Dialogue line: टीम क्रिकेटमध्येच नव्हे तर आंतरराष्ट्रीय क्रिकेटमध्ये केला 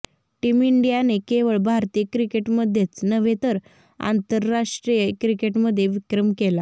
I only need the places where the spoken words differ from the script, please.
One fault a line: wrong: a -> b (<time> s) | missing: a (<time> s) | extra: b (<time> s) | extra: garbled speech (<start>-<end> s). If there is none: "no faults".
extra: इंडियाने केवळ भारतीय (0.6 s)
extra: विक्रम (5.9 s)